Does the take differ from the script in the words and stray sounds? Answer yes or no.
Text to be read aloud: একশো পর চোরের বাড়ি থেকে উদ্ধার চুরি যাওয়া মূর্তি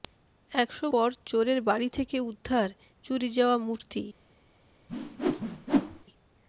yes